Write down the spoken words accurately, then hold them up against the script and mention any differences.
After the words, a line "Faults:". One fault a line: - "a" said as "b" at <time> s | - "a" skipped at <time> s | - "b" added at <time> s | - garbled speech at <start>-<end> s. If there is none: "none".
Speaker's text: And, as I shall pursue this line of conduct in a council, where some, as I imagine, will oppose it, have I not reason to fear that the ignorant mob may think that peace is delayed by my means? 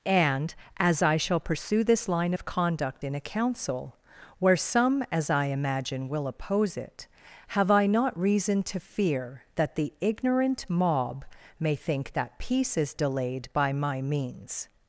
And, as I shall pursue this line of conduct in a council, where some, as I imagine, will oppose it, have I not reason to fear that the ignorant mob may think that peace is delayed by my means?
Faults:
none